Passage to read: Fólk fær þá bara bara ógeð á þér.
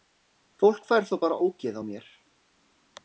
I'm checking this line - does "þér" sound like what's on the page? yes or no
no